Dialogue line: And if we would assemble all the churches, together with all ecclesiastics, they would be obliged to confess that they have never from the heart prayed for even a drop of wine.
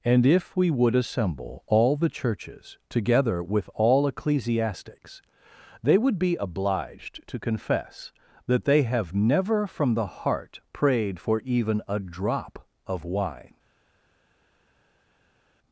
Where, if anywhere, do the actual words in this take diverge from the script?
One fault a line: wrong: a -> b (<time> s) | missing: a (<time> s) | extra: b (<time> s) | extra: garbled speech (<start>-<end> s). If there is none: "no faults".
no faults